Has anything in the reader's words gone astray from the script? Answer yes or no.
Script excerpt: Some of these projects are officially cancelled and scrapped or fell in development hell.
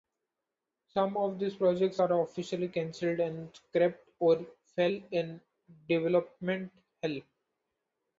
no